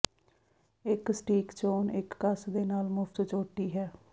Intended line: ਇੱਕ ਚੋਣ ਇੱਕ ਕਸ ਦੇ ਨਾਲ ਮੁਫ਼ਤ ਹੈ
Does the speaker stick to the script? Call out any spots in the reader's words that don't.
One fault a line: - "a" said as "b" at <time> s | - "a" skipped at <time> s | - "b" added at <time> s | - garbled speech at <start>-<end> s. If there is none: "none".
- "ਸਟੀਕ" added at 1.1 s
- "ਚੋਟੀ" added at 3.2 s